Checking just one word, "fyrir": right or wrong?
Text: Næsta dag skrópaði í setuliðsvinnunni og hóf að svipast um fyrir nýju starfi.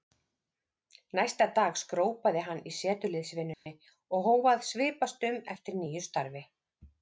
wrong